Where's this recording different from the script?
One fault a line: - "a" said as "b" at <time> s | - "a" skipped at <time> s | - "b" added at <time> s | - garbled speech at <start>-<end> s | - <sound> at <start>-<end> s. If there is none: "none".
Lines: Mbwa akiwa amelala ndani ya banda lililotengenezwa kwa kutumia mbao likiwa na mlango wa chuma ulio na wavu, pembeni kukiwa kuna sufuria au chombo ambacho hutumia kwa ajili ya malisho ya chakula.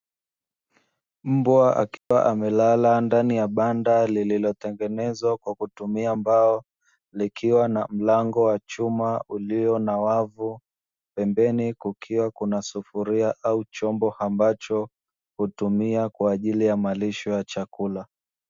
- dropout at 2.0-2.1 s